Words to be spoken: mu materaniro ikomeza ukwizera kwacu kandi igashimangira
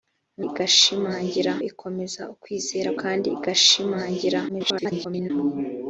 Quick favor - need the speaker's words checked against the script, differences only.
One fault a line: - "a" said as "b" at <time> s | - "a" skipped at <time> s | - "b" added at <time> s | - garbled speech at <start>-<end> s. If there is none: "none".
- "materaniro" said as "igashimangira" at 0.5 s
- "kwacu" skipped at 2.9 s
- garbled speech at 4.5-5.3 s